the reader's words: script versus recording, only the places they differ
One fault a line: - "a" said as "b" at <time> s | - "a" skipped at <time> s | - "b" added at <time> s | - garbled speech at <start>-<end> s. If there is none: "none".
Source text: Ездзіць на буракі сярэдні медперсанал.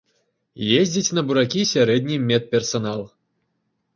none